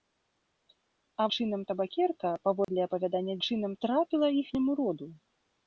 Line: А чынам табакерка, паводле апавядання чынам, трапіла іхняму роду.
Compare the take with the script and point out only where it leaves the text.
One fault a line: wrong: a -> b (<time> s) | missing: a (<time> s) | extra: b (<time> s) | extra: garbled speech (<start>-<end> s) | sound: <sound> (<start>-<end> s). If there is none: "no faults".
sound: dropout (2.6-2.7 s)